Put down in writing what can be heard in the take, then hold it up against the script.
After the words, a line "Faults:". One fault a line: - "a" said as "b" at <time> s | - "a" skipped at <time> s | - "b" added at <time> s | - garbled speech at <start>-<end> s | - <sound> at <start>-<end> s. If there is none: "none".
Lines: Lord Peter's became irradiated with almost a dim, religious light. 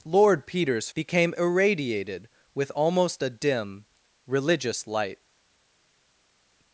Lord Peter's became irradiated with almost a dim, religious light.
Faults:
none